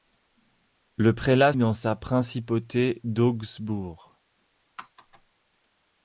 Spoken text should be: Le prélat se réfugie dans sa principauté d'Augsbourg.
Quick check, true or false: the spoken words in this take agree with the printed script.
false